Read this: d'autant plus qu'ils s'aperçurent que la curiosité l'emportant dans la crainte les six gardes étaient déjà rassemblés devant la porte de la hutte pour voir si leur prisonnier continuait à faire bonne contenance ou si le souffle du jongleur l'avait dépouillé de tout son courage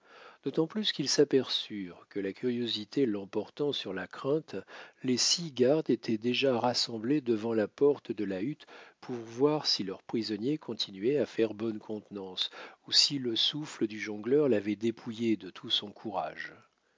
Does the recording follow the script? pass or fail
fail